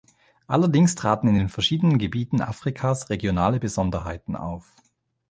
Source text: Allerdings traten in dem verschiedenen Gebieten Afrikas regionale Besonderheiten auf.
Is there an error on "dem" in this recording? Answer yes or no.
yes